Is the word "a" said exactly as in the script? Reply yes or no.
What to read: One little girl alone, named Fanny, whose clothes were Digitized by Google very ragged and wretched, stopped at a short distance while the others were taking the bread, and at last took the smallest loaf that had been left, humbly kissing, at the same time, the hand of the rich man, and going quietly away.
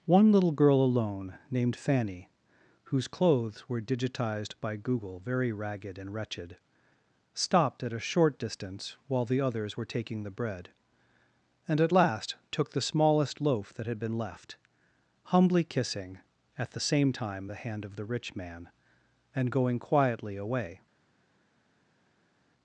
yes